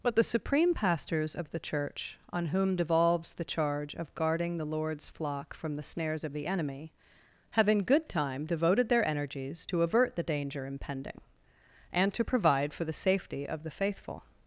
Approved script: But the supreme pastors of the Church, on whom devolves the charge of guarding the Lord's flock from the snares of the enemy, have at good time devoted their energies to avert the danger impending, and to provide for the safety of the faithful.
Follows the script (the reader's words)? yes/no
no